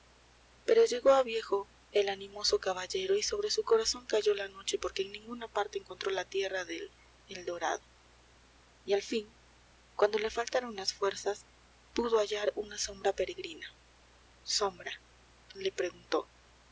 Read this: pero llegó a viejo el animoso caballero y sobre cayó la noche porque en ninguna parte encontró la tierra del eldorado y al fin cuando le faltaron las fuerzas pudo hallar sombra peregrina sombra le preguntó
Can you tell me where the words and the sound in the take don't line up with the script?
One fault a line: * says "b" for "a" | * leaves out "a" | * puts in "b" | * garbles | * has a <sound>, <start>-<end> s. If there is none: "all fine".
* puts in "su corazón"
* puts in "una"